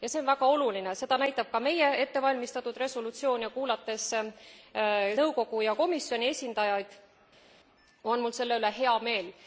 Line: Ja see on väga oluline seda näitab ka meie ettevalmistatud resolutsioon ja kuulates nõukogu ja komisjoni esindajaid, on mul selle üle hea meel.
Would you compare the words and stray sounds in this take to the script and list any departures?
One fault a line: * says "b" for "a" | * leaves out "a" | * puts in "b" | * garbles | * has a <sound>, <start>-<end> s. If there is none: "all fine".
all fine